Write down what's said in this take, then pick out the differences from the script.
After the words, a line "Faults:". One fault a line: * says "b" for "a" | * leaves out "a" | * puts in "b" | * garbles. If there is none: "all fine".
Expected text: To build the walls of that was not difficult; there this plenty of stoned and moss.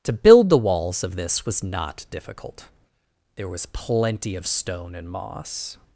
To build the walls of this was not difficult; there was plenty of stone and moss.
Faults:
* says "this" for "that"
* says "was" for "this"
* says "stone" for "stoned"